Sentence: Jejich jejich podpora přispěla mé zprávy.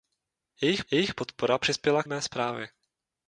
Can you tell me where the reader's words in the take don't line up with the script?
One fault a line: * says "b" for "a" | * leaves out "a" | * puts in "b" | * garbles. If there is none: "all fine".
all fine